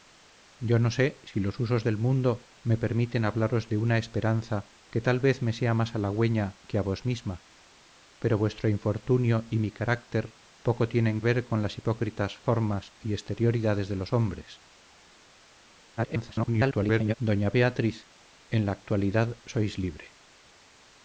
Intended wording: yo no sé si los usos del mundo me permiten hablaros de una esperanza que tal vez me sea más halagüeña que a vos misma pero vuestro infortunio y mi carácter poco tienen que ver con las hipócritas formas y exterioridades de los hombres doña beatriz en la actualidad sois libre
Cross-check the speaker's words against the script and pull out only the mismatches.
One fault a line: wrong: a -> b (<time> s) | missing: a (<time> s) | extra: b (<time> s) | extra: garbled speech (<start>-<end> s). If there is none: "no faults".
missing: que (11.2 s)
extra: garbled speech (16.0-17.1 s)